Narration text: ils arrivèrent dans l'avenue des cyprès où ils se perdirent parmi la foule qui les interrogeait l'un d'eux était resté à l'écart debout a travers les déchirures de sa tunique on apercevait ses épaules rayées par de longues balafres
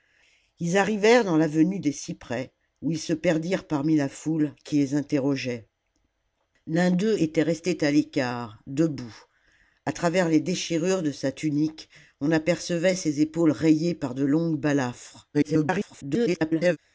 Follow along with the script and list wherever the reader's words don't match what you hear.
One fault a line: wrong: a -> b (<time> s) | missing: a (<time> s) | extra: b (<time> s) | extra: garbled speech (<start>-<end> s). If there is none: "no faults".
extra: garbled speech (15.3-16.8 s)